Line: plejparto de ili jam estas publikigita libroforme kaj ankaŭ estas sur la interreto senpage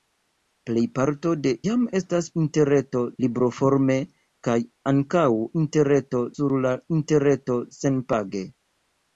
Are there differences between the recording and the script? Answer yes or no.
yes